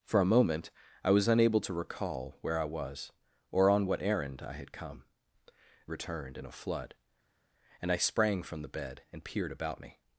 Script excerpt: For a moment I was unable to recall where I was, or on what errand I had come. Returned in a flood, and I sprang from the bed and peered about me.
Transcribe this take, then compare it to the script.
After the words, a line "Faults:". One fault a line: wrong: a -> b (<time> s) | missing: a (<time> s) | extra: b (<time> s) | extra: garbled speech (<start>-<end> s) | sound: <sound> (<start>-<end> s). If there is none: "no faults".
For a moment I was unable to recall where I was, or on what errand I had come. Returned in a flood, and I sprang from the bed and peered about me.
Faults:
no faults